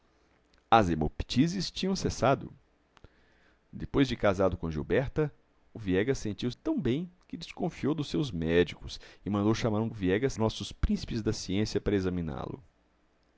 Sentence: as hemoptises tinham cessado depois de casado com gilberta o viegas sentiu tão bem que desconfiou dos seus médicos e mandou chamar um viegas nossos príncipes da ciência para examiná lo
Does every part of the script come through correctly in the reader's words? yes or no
yes